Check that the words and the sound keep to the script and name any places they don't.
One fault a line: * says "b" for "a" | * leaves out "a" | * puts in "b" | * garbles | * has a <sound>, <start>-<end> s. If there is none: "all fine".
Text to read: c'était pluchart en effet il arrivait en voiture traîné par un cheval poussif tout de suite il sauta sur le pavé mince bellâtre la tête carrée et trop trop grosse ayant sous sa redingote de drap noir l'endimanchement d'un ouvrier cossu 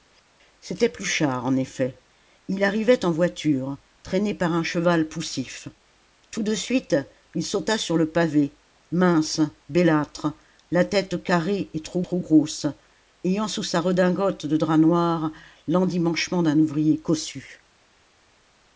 all fine